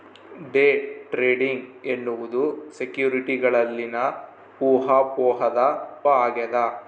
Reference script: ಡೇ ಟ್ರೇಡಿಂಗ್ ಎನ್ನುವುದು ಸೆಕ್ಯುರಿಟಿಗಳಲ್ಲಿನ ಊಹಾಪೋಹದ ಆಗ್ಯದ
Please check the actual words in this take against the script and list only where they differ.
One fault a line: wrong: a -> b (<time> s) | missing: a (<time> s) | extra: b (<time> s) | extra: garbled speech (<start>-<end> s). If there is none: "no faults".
no faults